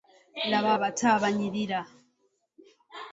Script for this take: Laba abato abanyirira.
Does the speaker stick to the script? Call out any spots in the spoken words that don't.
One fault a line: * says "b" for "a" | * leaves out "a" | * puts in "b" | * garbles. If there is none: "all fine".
all fine